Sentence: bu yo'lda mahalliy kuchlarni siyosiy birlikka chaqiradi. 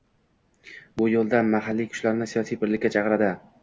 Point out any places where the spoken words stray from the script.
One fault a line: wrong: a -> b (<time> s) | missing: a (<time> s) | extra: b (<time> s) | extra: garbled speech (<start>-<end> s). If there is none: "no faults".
no faults